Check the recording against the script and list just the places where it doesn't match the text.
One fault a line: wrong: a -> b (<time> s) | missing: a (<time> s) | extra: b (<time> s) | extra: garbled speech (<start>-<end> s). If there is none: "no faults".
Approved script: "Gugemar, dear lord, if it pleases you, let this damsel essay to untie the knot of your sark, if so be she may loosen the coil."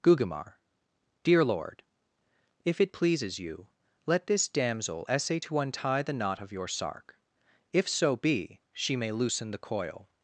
no faults